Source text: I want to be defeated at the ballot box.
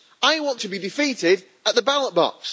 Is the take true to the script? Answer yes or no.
yes